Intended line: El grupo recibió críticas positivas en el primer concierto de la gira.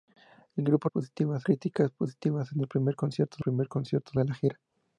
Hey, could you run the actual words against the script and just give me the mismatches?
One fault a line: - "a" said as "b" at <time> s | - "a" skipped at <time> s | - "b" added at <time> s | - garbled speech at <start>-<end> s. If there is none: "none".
- "recibió" said as "positivas" at 0.9 s
- "primer concierto" added at 3.4 s